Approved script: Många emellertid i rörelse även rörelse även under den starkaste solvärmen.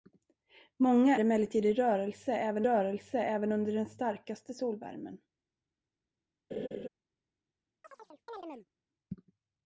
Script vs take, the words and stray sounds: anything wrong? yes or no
yes